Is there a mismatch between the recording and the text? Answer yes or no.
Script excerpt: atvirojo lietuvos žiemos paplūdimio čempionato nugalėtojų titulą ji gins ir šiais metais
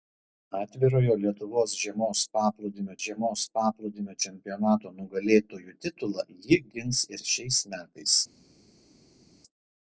yes